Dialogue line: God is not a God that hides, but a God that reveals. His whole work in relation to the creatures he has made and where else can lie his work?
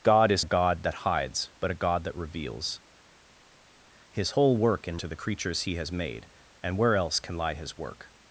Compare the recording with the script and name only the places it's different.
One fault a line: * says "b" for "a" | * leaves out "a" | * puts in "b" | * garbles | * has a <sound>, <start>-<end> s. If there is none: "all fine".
* leaves out "not"
* leaves out "relation"